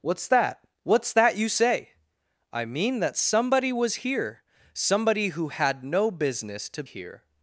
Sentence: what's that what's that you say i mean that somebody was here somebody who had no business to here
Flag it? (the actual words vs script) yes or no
no